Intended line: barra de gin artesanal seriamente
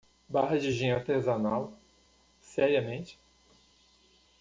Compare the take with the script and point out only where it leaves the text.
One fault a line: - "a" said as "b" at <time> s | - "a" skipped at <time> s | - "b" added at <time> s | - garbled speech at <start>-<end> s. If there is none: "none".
none